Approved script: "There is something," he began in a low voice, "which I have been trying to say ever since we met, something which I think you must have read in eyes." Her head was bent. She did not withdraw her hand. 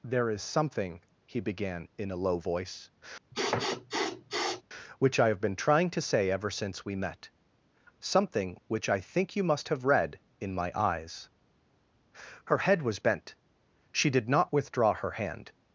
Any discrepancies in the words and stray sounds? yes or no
yes